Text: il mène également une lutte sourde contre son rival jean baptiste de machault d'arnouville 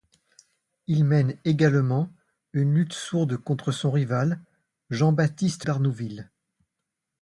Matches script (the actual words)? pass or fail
fail